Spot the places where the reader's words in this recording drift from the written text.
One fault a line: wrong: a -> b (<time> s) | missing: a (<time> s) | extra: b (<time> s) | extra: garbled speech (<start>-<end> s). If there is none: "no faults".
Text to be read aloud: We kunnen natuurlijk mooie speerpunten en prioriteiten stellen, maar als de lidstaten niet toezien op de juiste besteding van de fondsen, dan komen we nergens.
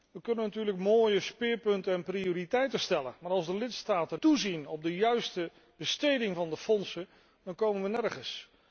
missing: niet (4.2 s)